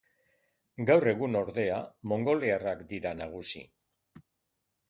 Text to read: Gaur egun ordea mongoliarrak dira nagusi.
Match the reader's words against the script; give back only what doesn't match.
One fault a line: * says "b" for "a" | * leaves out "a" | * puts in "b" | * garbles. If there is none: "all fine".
all fine